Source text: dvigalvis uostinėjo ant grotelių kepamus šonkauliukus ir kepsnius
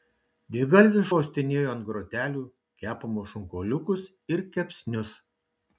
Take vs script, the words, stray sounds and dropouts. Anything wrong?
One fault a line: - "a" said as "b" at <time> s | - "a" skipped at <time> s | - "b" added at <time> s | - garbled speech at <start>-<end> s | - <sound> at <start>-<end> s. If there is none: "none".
none